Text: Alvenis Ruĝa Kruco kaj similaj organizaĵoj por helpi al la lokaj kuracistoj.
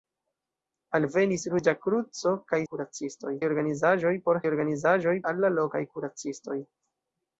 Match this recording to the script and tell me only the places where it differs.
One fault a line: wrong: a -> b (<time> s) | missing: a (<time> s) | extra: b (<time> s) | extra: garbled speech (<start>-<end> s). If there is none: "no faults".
wrong: similaj -> kuracistoj (2.7 s)
wrong: helpi -> organizaĵoj (4.5 s)